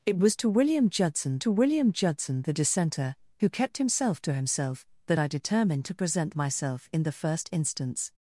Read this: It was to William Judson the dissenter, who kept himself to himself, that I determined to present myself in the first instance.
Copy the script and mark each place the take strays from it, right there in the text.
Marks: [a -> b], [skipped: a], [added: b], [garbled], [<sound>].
It was to William Judson [added: to William Judson] the dissenter, who kept himself to himself, that I determined to present myself in the first instance.